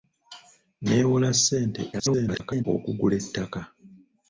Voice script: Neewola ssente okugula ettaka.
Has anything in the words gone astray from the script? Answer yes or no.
yes